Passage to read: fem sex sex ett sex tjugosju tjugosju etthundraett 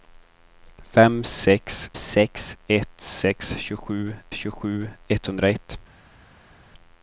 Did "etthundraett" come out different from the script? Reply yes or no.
no